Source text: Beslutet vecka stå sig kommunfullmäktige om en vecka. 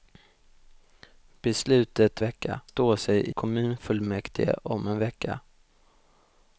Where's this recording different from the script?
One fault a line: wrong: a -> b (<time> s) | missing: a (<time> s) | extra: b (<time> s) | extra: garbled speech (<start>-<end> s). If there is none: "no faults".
no faults